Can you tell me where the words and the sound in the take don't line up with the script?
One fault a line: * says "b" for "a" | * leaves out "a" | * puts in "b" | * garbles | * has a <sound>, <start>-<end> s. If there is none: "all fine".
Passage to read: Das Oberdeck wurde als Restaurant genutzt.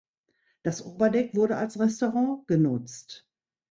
all fine